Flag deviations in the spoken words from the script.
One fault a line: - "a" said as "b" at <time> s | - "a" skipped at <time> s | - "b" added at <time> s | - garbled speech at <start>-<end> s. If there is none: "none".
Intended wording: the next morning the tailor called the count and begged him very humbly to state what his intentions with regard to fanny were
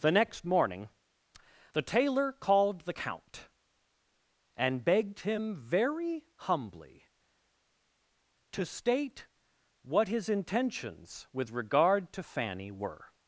none